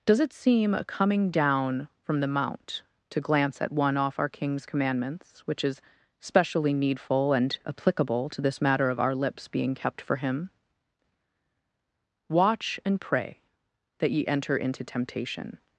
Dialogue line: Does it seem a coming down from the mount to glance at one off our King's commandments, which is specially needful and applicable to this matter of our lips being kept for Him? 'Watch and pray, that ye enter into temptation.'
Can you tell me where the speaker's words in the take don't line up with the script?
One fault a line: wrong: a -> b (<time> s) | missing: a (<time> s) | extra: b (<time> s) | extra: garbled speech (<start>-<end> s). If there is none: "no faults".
no faults